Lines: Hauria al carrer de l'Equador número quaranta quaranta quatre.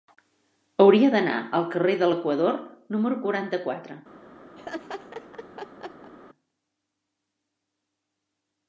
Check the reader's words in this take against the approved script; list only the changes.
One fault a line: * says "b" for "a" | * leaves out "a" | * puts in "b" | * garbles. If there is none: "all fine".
* puts in "d'anar"
* leaves out "quaranta"